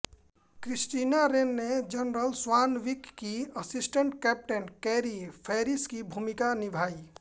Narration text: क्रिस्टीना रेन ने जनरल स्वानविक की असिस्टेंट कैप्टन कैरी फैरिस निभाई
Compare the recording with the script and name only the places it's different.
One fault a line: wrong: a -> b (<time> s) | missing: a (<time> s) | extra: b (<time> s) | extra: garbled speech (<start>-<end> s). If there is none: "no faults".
extra: की भूमिका (5.8 s)